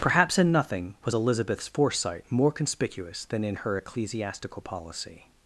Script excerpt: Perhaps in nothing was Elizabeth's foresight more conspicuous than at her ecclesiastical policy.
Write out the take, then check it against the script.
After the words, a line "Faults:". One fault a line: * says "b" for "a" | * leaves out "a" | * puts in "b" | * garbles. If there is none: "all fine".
Perhaps in nothing was Elizabeth's foresight more conspicuous than in her ecclesiastical policy.
Faults:
* says "in" for "at"